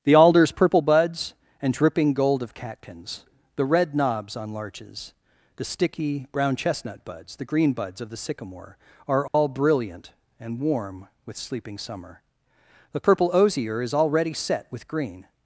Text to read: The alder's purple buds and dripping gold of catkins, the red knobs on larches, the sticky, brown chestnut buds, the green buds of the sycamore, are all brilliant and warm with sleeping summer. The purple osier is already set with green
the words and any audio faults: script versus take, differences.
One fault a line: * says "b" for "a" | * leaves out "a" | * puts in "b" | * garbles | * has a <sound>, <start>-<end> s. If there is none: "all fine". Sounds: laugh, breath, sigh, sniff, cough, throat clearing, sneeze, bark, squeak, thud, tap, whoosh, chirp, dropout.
* has a dropout, 9.3-9.3 s